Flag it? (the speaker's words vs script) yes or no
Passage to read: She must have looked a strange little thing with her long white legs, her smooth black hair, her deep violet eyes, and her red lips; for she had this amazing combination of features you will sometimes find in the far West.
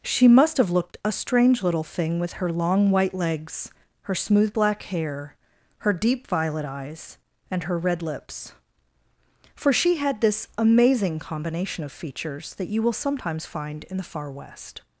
yes